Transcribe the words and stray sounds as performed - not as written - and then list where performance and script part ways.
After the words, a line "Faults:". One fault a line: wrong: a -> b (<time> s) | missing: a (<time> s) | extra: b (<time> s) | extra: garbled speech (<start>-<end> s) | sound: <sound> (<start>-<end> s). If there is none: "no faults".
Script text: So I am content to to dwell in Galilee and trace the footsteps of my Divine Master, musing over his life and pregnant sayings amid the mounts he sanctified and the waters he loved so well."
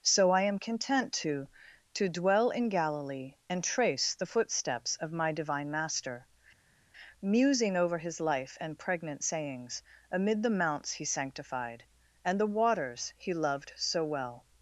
So I am content to to dwell in Galilee and trace the footsteps of my Divine Master, musing over his life and pregnant sayings amid the mounts he sanctified and the waters he loved so well."
Faults:
no faults